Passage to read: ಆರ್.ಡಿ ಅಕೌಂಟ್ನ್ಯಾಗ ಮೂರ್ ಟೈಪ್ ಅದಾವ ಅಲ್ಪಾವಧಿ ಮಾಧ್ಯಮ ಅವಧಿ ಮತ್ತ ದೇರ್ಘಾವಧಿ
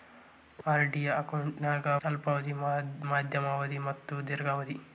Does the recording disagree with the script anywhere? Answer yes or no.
yes